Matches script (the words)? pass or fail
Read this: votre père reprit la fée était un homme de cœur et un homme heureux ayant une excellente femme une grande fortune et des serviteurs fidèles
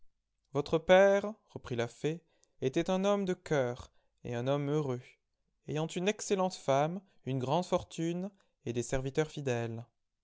pass